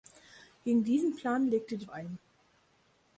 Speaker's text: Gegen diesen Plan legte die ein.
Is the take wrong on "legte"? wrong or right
right